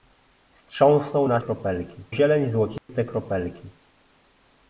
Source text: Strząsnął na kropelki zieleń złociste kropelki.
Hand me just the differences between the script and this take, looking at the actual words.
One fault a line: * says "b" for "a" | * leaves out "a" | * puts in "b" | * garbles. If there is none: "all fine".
all fine